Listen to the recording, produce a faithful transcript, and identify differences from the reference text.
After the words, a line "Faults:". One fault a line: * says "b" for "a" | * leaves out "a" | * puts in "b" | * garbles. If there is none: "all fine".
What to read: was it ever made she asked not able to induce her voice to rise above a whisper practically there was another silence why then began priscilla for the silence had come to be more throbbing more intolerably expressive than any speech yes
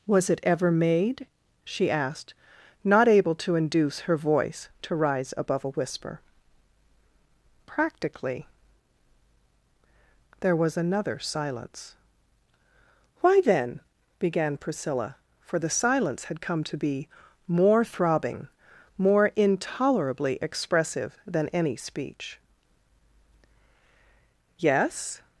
was it ever made she asked not able to induce her voice to rise above a whisper practically there was another silence why then began priscilla for the silence had come to be more throbbing more intolerably expressive than any speech yes
Faults:
all fine